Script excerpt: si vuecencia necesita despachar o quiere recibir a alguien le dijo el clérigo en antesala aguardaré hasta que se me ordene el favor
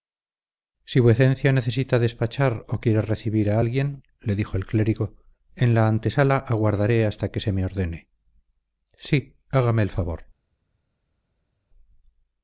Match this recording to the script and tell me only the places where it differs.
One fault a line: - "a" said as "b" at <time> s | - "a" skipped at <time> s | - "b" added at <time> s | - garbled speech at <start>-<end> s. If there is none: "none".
- "la" added at 5.7 s
- "sí hágame" added at 8.9 s